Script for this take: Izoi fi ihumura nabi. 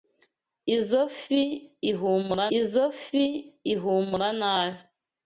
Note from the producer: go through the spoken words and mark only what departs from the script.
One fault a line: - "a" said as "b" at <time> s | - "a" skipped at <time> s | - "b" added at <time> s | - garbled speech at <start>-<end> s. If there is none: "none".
- "izoi fi ihumura" added at 2.6 s